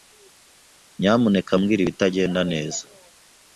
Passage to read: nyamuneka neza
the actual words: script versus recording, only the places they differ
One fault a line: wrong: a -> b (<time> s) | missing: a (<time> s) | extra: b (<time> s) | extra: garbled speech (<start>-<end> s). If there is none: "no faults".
extra: mbwira ibitagenda (1.6 s)